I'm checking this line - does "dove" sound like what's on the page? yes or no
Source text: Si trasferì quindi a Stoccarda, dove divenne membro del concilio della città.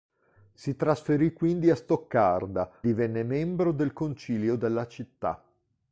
no